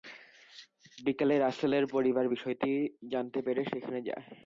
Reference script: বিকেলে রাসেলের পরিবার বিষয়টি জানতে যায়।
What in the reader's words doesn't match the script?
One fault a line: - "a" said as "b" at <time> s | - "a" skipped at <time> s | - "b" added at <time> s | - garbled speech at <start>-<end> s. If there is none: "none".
- "পেরে সেখানে" added at 3.5 s